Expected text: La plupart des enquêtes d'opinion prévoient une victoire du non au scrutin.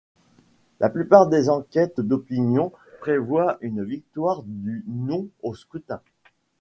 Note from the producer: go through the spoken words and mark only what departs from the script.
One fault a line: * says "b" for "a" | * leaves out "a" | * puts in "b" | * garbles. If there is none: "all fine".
all fine